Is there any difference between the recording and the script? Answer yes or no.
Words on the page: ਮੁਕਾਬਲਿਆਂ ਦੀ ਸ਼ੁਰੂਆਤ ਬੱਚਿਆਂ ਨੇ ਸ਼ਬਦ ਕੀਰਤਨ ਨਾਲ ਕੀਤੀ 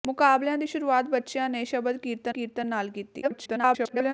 yes